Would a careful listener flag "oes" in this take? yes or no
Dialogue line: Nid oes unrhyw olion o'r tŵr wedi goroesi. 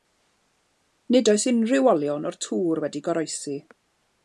no